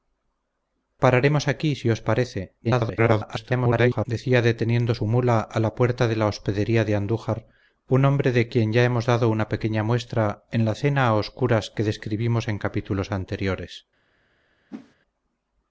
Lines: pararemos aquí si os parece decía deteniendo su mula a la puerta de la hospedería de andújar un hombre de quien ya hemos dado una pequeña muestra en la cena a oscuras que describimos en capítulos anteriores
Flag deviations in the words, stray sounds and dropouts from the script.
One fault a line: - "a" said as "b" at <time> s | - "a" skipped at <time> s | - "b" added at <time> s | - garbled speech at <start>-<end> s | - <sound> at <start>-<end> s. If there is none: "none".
- garbled speech at 2.6-4.1 s
- whoosh at 14.7-15.0 s